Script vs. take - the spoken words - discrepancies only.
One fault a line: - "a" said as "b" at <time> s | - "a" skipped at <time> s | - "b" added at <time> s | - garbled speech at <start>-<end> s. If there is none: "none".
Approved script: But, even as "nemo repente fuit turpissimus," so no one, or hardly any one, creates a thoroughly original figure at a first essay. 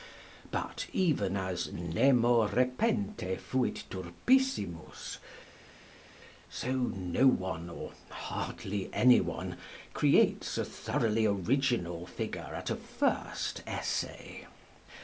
none